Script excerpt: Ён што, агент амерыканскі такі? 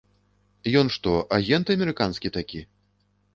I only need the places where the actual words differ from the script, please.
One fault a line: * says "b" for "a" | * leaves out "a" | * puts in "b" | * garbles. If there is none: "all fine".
all fine